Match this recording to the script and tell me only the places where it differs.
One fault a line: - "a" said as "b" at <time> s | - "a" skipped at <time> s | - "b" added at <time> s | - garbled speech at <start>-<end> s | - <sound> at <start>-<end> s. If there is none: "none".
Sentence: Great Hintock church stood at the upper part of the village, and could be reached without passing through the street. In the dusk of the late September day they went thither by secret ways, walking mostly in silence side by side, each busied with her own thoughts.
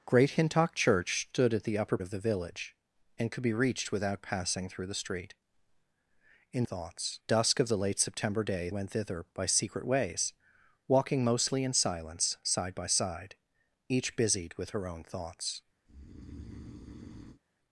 - "part" skipped at 2.0 s
- "the" said as "thoughts" at 6.6 s
- "they" skipped at 8.7 s
- breath at 15.9-17.4 s